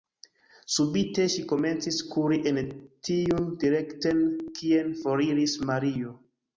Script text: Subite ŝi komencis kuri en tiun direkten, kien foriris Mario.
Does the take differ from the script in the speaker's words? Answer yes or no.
no